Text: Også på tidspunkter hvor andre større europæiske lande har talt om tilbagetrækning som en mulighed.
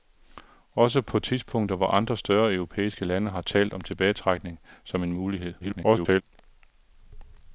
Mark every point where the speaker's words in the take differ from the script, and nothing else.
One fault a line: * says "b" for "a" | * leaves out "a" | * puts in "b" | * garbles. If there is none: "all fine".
* garbles